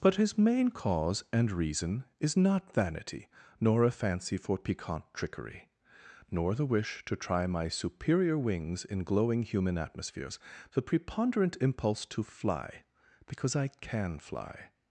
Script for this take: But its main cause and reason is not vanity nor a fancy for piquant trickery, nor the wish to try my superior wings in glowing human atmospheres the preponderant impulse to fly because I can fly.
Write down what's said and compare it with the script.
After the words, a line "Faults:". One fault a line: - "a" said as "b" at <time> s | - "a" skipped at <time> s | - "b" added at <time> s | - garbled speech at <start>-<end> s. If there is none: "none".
But his main cause and reason is not vanity nor a fancy for piquant trickery, nor the wish to try my superior wings in glowing human atmospheres the preponderant impulse to fly because I can fly.
Faults:
- "its" said as "his" at 0.1 s